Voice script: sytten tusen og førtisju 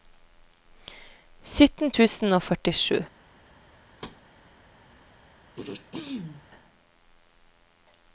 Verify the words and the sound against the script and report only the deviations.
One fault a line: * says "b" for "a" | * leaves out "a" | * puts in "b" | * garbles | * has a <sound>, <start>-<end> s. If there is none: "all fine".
* has a thud, 4.0-4.2 s
* has a throat clearing, 5.6-6.5 s